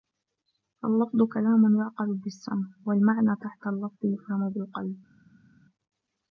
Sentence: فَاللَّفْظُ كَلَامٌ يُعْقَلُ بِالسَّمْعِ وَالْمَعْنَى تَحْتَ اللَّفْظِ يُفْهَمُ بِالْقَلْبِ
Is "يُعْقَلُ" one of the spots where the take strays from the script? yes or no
no